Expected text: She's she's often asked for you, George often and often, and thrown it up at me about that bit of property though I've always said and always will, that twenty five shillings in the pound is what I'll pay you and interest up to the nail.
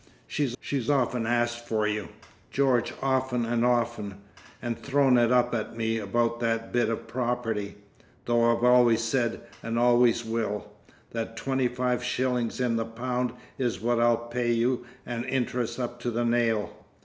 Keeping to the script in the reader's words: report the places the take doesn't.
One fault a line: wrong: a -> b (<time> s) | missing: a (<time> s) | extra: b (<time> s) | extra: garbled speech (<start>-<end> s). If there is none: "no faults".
no faults